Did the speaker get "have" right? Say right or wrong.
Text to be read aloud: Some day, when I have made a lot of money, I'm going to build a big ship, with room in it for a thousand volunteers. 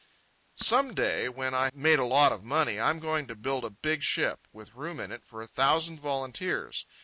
wrong